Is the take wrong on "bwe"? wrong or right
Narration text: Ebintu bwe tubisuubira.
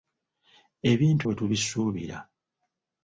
right